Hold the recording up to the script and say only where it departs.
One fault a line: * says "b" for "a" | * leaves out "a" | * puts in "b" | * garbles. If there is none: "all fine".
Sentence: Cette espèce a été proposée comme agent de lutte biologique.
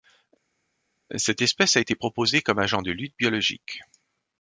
all fine